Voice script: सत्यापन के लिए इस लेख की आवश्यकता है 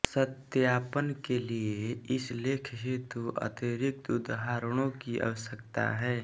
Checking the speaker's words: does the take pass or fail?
fail